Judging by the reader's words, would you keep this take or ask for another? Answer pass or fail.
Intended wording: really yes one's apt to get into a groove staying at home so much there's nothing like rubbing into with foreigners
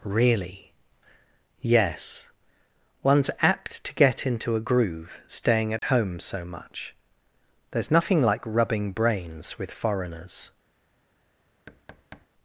fail